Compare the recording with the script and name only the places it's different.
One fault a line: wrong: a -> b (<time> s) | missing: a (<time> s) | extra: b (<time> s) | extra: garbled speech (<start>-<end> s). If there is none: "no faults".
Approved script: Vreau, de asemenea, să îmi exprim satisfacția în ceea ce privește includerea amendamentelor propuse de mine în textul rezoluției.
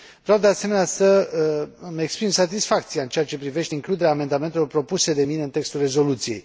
no faults